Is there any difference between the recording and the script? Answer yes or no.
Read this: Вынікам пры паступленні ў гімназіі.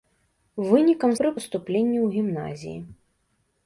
no